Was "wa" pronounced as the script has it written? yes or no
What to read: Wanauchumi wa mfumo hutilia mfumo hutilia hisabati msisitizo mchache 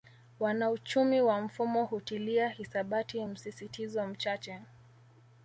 yes